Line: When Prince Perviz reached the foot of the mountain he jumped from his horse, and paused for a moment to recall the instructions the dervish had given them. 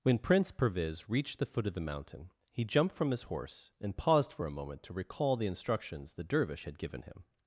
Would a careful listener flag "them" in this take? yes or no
yes